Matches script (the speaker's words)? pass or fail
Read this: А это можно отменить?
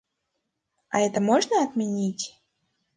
pass